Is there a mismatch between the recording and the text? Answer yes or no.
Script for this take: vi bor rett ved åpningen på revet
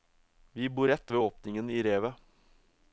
yes